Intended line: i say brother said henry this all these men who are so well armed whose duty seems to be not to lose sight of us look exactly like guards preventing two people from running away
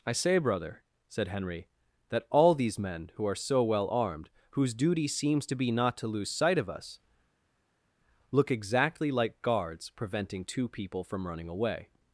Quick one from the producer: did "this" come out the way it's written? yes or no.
no